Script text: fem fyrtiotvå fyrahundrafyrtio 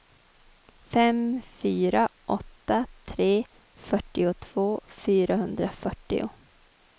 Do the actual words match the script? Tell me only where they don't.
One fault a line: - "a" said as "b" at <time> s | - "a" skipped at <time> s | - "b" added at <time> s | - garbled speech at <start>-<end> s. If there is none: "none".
- "fyra åtta tre" added at 1.4 s